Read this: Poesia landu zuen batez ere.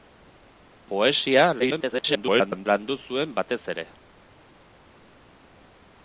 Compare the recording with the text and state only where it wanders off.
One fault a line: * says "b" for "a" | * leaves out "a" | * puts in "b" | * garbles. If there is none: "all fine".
* garbles